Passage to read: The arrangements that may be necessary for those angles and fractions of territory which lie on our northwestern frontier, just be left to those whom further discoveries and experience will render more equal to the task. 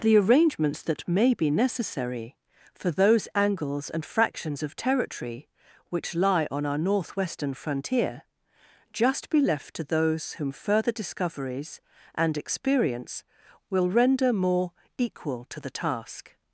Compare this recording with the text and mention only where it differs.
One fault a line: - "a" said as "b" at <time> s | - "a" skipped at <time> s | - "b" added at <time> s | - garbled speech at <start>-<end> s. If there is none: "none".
none